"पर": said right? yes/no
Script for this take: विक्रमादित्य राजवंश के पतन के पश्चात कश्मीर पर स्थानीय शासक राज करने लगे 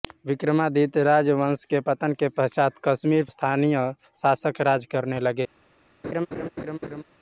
no